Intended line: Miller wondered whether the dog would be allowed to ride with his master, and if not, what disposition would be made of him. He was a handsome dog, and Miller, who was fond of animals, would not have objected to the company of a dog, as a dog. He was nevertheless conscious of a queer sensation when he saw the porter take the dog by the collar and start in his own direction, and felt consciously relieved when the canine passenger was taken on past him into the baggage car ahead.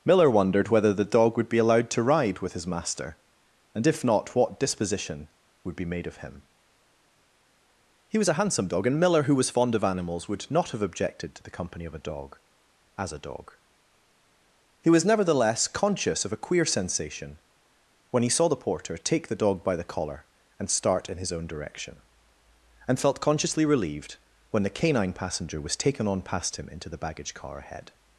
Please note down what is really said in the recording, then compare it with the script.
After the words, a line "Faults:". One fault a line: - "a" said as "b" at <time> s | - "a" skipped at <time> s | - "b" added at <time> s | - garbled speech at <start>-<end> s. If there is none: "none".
Miller wondered whether the dog would be allowed to ride with his master, and if not, what disposition would be made of him. He was a handsome dog, and Miller, who was fond of animals, would not have objected to the company of a dog, as a dog. He was nevertheless conscious of a queer sensation when he saw the porter take the dog by the collar and start in his own direction, and felt consciously relieved when the canine passenger was taken on past him into the baggage car ahead.
Faults:
none